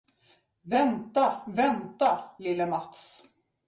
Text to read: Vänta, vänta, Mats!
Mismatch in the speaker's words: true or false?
true